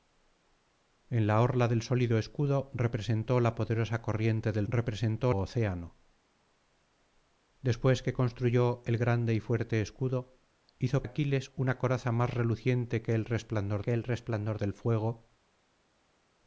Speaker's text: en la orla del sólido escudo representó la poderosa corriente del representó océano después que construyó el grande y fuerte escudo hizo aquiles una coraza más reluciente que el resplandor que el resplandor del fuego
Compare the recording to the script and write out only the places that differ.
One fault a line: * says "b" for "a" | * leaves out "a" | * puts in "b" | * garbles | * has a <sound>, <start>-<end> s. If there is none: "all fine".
all fine